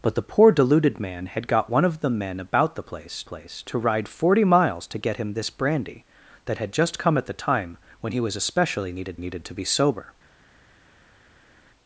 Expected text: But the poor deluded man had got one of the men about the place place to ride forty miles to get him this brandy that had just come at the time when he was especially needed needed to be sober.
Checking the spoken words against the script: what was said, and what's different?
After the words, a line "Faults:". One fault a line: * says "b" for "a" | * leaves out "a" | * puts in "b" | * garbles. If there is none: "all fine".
But the poor deluded man had got one of the men about the place place to ride forty miles to get him this brandy that had just come at the time when he was especially needed needed to be sober.
Faults:
all fine